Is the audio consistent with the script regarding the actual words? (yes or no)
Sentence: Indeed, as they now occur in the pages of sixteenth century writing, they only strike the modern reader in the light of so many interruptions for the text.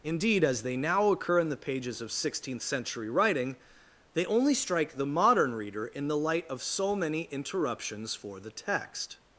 yes